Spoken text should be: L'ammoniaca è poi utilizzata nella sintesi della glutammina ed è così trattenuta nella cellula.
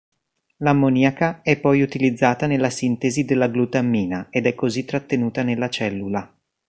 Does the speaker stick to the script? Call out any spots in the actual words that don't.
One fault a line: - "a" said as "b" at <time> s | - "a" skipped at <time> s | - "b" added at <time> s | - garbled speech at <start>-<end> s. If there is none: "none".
none